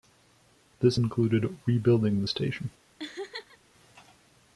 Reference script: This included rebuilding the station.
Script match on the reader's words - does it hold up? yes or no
yes